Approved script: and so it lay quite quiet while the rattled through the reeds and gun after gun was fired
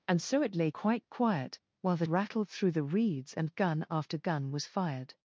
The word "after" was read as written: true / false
true